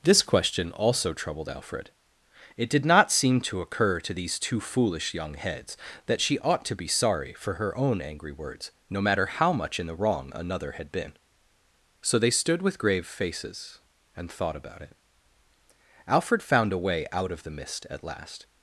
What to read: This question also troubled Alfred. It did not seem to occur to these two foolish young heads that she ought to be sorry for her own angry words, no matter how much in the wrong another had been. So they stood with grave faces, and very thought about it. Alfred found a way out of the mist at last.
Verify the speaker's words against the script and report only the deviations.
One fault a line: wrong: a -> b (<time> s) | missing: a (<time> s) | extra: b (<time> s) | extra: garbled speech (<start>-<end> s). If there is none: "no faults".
missing: very (14.3 s)